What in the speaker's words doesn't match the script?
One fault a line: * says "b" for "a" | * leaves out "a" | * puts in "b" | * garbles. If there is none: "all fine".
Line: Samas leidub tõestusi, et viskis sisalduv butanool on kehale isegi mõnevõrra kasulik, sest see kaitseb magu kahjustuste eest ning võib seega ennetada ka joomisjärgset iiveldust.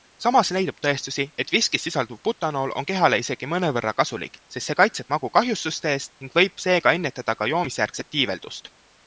all fine